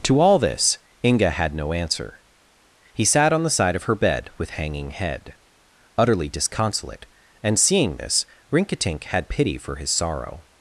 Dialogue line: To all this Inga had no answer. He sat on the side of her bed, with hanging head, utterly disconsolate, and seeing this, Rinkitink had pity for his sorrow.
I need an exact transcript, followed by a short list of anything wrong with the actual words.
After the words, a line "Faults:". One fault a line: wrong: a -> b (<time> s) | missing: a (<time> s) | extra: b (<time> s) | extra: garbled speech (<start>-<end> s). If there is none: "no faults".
To all this Inga had no answer. He sat on the side of her bed, with hanging head, utterly disconsolate, and seeing this, Rinkitink had pity for his sorrow.
Faults:
no faults